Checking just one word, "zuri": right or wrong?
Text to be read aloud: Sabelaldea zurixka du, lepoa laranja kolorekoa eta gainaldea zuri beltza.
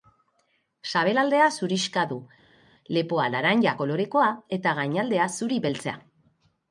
right